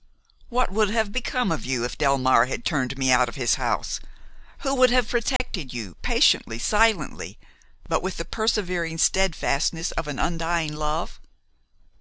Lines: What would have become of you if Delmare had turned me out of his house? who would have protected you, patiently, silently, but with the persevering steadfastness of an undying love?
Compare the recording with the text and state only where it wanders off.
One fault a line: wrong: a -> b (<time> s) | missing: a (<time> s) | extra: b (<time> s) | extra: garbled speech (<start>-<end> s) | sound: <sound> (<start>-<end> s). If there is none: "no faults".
sound: dropout (5.4-5.4 s)